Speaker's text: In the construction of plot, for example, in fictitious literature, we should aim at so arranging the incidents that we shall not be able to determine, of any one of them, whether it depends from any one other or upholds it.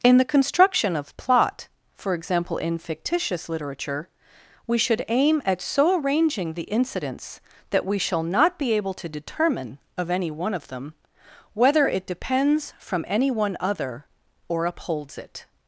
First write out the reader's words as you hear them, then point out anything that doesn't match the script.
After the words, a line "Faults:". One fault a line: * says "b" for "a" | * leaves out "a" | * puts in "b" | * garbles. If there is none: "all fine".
In the construction of plot, for example, in fictitious literature, we should aim at so arranging the incidents that we shall not be able to determine, of any one of them, whether it depends from any one other or upholds it.
Faults:
all fine